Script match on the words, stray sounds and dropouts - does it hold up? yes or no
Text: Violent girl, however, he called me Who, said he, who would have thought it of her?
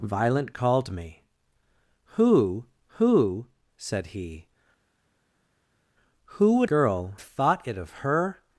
no